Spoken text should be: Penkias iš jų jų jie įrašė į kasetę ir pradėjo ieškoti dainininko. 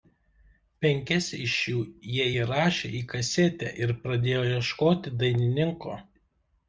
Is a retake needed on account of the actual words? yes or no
yes